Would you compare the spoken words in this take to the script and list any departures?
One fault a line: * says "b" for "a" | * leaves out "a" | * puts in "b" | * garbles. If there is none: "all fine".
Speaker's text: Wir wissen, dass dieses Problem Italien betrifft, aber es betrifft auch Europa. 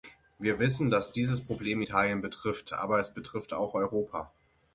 all fine